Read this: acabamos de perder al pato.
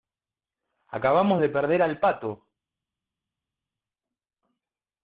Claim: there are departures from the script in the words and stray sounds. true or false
false